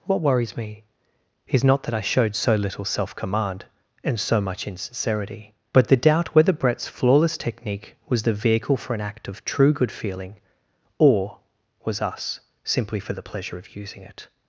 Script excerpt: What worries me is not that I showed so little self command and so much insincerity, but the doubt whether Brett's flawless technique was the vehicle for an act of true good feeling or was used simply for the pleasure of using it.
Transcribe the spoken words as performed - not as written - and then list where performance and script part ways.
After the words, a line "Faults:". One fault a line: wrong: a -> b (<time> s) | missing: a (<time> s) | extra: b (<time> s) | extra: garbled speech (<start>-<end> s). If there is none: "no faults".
What worries me is not that I showed so little self command and so much insincerity, but the doubt whether Brett's flawless technique was the vehicle for an act of true good feeling or was us simply for the pleasure of using it.
Faults:
wrong: used -> us (12.0 s)